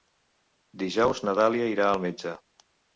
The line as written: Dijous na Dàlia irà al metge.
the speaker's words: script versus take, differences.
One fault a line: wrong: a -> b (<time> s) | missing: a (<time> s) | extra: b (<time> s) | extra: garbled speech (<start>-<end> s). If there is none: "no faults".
no faults